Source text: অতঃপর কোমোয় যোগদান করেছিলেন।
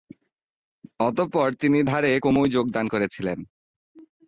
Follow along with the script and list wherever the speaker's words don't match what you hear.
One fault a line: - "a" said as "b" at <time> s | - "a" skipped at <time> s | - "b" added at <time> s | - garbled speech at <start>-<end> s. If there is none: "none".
- "তিনি ধারে" added at 1.5 s